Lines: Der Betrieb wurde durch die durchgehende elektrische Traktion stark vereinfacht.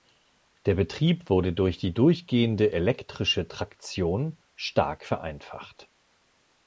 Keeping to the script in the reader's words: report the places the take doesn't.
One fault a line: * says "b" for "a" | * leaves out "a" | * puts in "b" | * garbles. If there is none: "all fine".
all fine